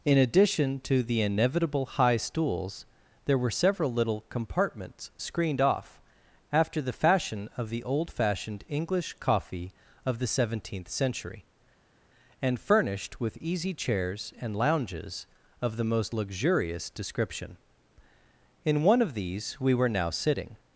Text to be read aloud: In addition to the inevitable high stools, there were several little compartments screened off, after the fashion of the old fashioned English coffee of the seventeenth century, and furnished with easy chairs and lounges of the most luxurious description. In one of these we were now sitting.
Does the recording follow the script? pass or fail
pass